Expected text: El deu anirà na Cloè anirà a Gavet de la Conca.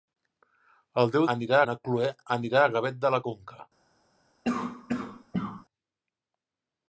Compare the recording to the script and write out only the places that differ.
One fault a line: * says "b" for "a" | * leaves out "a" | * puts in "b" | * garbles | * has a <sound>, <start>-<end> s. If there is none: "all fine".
* has a cough, 4.4-5.7 s